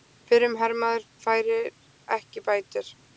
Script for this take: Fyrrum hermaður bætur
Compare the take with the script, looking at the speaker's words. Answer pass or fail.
fail